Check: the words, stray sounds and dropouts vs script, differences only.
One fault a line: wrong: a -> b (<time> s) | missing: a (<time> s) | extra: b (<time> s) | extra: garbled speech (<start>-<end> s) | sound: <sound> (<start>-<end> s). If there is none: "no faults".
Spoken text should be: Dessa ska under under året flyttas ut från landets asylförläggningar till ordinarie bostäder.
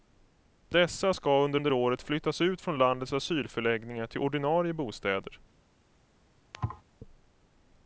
sound: thud (6.5-6.8 s)